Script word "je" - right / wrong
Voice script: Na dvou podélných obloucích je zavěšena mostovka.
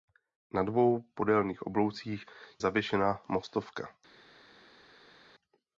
wrong